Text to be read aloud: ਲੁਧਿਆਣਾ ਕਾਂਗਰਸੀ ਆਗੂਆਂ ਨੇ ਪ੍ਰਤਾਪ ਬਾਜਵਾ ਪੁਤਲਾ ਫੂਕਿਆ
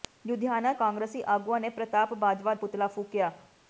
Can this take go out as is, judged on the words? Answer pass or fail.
pass